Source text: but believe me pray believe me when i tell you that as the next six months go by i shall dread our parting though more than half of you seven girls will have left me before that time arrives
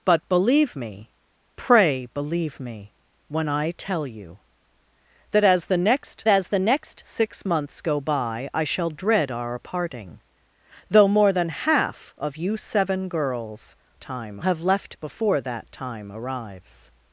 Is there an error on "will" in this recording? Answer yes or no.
yes